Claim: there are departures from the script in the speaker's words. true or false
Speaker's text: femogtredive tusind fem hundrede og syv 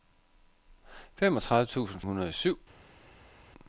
true